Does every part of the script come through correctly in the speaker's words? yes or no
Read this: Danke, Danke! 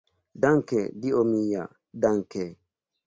no